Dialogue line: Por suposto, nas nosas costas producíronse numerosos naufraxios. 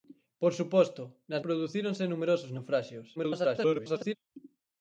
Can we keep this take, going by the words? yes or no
no